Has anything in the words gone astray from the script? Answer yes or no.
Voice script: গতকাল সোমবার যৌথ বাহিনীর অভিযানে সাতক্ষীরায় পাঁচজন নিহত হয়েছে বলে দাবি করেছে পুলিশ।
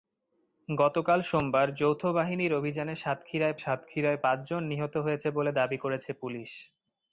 yes